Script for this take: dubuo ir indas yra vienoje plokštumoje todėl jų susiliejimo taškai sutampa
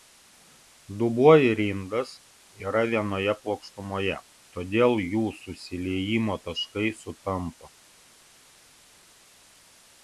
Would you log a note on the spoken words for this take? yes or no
no